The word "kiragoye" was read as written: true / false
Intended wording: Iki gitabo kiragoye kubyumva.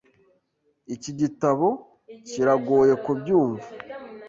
true